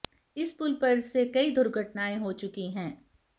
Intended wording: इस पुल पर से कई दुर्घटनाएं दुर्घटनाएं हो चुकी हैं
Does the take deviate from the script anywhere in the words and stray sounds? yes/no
yes